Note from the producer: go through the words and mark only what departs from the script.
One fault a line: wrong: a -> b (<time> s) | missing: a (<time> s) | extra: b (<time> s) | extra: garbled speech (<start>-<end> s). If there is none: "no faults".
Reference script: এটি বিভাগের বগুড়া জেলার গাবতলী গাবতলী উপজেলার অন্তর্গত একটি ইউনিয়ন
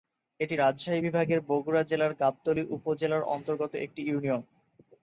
extra: রাজশাহী (0.5 s)
missing: গাবতলী (2.6 s)